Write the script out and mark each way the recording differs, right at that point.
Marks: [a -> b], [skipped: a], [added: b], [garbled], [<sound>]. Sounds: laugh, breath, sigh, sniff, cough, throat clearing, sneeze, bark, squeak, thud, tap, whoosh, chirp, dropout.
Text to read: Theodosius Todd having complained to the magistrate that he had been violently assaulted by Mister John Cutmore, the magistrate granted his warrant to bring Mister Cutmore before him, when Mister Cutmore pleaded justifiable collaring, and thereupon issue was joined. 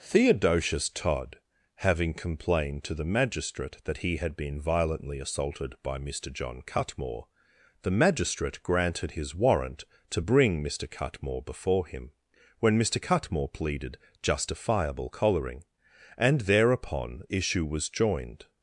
Theodosius Todd having complained to the magistrate that he had been violently assaulted by Mister John Cutmore, the magistrate granted his warrant to bring Mister Cutmore before him, when Mister Cutmore pleaded justifiable collaring, and thereupon issue was joined.